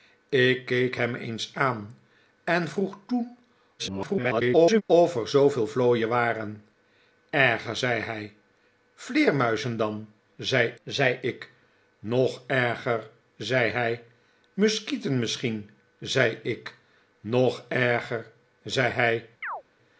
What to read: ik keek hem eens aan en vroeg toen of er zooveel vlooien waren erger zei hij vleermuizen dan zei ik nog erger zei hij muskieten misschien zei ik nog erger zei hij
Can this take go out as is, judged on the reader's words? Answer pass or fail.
fail